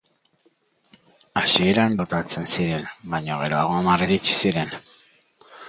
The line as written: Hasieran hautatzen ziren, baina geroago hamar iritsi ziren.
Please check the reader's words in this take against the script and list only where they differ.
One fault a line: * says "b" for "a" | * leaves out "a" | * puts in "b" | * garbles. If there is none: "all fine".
all fine